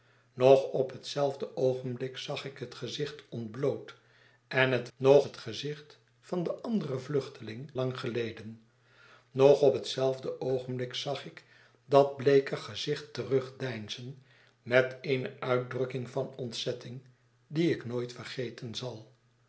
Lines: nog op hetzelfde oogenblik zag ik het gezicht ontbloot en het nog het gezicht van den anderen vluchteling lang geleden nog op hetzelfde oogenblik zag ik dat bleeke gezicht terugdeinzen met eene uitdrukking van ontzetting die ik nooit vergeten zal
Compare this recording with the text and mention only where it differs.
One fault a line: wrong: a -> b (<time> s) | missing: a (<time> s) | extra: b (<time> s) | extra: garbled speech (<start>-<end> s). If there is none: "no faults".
no faults